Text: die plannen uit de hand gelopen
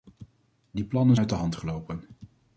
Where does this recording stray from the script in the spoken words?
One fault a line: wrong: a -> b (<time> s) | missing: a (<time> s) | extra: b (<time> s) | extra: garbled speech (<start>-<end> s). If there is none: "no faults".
no faults